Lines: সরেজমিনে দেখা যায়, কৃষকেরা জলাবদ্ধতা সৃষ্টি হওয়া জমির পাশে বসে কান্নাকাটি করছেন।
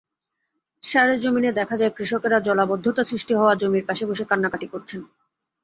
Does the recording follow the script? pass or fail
pass